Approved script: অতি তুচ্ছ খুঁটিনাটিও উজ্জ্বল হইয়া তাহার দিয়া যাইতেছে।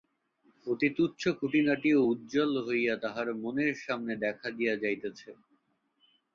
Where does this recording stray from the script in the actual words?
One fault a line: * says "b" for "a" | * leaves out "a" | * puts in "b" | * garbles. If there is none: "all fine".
* puts in "মনের সামনে দেখা"